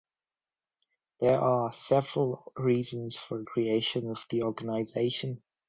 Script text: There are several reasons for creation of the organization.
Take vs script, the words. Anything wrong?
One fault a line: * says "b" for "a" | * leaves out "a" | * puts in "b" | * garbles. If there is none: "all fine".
all fine